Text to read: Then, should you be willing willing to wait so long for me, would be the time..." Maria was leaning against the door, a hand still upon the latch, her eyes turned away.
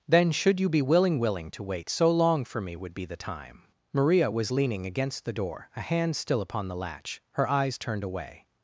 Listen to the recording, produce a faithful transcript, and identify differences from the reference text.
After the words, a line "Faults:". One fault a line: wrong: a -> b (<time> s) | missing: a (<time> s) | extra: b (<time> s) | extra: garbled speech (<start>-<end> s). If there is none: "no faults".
Then, should you be willing willing to wait so long for me, would be the time..." Maria was leaning against the door, a hand still upon the latch, her eyes turned away.
Faults:
no faults